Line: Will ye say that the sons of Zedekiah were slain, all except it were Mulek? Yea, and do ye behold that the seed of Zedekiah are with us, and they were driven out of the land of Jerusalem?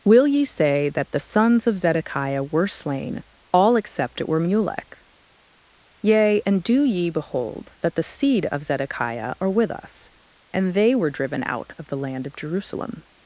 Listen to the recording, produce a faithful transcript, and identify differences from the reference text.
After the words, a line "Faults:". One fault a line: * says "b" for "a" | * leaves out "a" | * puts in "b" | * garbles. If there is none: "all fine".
Will ye say that the sons of Zedekiah were slain, all except it were Mulek? Yea, and do ye behold that the seed of Zedekiah are with us, and they were driven out of the land of Jerusalem?
Faults:
all fine